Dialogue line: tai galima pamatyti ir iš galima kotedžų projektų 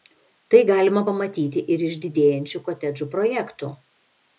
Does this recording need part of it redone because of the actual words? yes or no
yes